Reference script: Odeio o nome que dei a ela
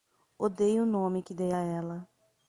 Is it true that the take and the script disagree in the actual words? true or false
false